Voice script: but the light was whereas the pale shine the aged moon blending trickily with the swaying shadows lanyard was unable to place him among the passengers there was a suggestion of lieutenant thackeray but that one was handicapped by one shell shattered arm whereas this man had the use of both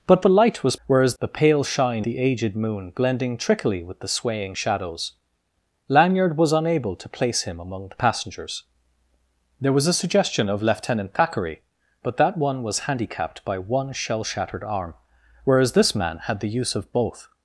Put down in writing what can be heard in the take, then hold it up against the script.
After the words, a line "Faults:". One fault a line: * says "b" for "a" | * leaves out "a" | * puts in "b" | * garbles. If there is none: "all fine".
but the light was whereas the pale shine the aged moon blending trickily with the swaying shadows lanyard was unable to place him among the passengers there was a suggestion of lieutenant thackeray but that one was handicapped by one shell shattered arm whereas this man had the use of both
Faults:
all fine